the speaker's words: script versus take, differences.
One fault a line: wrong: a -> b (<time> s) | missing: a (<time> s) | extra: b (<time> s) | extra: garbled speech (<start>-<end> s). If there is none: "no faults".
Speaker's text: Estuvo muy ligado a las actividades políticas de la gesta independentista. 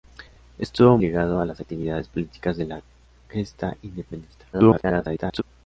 missing: muy (1.0 s)
extra: garbled speech (4.5-5.4 s)